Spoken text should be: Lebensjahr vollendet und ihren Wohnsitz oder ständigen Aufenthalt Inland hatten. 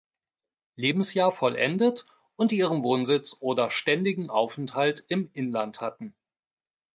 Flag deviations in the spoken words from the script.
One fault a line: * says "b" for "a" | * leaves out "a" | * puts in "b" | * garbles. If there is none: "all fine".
* puts in "im"